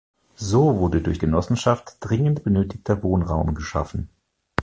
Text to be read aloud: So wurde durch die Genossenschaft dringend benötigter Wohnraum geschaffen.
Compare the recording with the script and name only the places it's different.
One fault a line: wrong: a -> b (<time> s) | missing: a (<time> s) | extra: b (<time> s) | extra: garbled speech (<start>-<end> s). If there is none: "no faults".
missing: die (1.2 s)